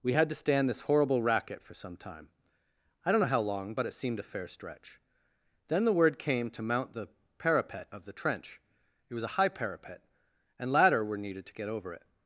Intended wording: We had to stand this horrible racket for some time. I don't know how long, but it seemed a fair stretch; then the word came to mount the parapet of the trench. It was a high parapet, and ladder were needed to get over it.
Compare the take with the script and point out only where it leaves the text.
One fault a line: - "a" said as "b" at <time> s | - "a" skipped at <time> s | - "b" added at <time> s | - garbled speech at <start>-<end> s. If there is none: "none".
none